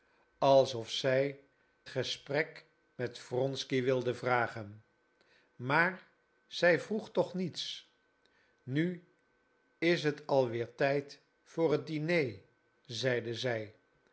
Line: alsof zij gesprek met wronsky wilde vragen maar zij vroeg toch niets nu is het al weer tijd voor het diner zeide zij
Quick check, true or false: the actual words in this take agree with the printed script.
true